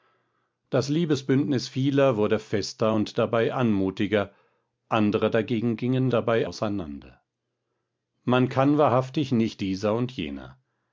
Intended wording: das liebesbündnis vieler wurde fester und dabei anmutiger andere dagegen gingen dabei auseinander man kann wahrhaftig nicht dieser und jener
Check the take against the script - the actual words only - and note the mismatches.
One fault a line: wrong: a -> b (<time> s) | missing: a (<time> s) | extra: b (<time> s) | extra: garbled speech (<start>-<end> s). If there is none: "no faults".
no faults